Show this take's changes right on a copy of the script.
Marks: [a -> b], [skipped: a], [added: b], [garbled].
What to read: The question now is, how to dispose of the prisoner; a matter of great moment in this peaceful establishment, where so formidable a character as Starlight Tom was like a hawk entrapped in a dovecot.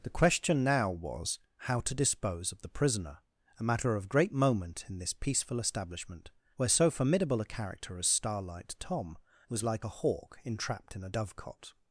The question now [is, -> was] how to dispose of the prisoner; a matter of great moment in this peaceful establishment, where so formidable a character as Starlight Tom was like a hawk entrapped in a dovecot.